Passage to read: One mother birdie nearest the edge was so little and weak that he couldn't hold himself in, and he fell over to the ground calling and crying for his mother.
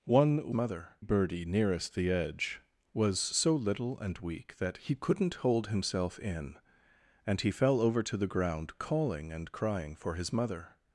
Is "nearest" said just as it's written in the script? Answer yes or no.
yes